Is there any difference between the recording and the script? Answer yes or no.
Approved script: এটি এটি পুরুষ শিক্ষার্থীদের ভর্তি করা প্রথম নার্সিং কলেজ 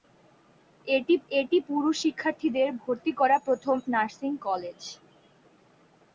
no